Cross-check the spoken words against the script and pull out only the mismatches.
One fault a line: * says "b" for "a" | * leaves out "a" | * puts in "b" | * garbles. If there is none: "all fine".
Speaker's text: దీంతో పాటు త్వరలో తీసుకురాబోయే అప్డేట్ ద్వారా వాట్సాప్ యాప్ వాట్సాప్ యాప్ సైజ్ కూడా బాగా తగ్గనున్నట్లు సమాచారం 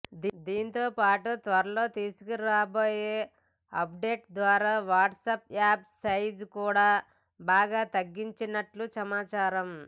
* leaves out "వాట్సాప్ యాప్"